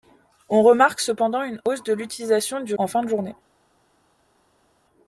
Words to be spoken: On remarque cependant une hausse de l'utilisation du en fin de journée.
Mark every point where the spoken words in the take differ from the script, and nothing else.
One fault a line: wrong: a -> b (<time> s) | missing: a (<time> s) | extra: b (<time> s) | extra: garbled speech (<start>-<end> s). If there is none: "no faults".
no faults